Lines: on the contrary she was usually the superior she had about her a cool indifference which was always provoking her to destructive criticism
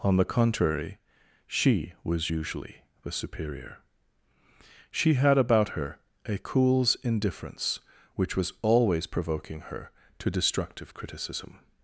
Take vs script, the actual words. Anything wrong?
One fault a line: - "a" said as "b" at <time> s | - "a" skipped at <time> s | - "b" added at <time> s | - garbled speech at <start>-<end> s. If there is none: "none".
- "cool" said as "cools" at 6.4 s